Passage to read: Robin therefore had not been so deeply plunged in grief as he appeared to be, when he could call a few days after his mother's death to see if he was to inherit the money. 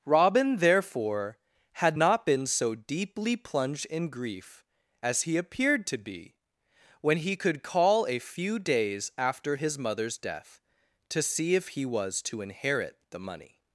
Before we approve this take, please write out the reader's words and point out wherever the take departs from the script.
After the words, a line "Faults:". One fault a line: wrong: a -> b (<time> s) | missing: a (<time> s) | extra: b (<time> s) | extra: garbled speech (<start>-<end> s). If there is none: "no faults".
Robin therefore had not been so deeply plunged in grief as he appeared to be, when he could call a few days after his mother's death to see if he was to inherit the money.
Faults:
no faults